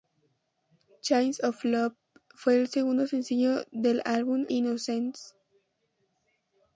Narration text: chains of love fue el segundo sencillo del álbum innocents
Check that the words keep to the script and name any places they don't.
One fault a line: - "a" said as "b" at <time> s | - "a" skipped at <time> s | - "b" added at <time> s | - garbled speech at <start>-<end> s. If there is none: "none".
none